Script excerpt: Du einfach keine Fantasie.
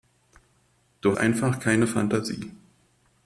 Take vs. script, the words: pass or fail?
pass